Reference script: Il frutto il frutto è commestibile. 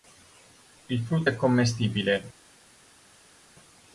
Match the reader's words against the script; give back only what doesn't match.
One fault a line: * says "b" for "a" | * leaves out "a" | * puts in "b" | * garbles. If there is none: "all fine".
* leaves out "il frutto"